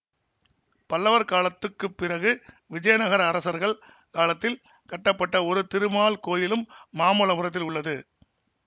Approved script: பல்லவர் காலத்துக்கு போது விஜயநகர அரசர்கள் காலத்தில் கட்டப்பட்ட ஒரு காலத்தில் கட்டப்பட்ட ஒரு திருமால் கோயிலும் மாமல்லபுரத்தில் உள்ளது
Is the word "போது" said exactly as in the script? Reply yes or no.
no